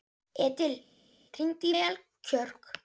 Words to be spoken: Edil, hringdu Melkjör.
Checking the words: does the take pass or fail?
pass